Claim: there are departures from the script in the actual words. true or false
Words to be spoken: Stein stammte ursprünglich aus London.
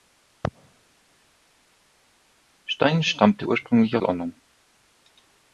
true